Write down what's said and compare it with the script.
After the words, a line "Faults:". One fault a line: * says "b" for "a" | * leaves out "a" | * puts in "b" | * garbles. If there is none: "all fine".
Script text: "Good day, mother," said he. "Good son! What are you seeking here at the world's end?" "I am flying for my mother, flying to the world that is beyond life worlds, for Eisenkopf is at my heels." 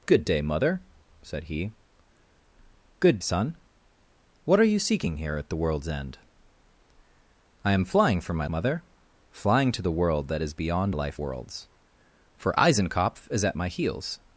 "Good day, mother," said he. "Good son! What are you seeking here at the world's end?" "I am flying for my mother, flying to the world that is beyond life worlds, for Eisenkopf is at my heels."
Faults:
all fine